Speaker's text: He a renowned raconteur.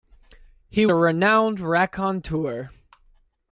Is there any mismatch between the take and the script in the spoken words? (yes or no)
no